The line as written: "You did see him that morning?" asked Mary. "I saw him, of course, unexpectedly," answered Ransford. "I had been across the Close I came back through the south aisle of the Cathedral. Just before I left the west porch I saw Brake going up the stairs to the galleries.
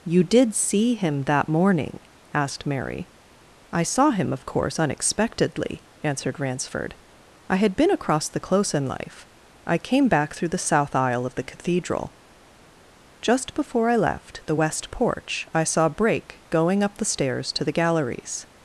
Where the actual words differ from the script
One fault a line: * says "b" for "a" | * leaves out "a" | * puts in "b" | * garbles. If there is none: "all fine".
* puts in "in life"